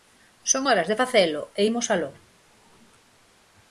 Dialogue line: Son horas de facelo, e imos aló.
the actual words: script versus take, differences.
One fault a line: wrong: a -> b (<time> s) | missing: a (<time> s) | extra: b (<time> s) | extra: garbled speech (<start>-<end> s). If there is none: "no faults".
no faults